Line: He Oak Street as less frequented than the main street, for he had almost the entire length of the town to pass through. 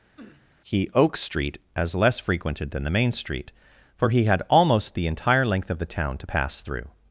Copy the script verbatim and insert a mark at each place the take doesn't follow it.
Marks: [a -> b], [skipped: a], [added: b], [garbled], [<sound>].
[sniff] He Oak Street as less frequented than the main street, for he had almost the entire length of the town to pass through.